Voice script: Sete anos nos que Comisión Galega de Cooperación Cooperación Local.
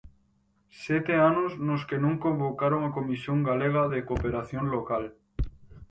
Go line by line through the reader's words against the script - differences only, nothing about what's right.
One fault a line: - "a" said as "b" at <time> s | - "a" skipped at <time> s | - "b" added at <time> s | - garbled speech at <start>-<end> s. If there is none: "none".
- "non convocaron a" added at 2.0 s
- "Cooperación" skipped at 4.6 s